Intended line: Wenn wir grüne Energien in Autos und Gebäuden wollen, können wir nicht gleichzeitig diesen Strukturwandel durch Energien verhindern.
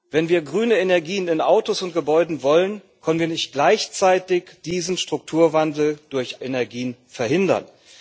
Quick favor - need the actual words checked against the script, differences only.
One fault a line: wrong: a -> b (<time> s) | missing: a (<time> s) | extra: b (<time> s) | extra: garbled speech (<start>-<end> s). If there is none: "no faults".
no faults